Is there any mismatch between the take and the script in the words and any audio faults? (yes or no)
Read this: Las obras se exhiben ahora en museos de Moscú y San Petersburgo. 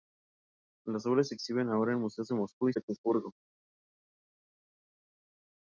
yes